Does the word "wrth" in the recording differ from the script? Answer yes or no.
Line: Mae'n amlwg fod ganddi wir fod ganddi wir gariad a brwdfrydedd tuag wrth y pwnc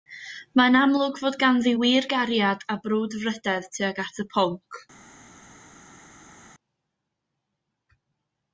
yes